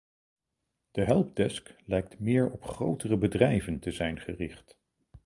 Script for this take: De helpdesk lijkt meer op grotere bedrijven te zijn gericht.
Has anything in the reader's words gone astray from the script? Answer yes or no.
no